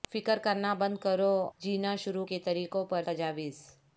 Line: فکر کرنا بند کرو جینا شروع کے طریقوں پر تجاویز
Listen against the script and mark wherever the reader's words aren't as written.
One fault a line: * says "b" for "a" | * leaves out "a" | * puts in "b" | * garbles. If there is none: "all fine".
all fine